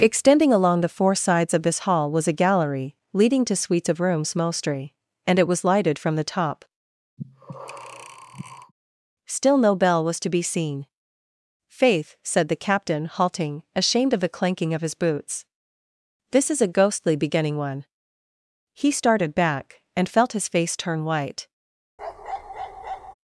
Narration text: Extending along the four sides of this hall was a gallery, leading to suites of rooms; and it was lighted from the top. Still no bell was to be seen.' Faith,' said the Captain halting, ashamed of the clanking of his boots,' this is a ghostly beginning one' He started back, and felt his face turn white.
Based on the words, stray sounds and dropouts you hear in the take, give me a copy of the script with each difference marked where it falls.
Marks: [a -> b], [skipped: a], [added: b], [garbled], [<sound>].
Extending along the four sides of this hall was a gallery, leading to suites of rooms; [added: mostly] and it was lighted from the top. [breath] Still no bell was to be seen.' Faith,' said the Captain halting, ashamed of the clanking of his boots,' this is a ghostly beginning one' He started back, and felt his face turn white. [bark]